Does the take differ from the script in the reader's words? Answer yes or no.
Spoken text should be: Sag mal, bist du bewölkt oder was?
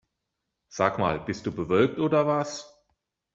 no